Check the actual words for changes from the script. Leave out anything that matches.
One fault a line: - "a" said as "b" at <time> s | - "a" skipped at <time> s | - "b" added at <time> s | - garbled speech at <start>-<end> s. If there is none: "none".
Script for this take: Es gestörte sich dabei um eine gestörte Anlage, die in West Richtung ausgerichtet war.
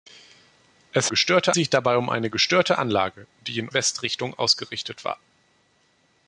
none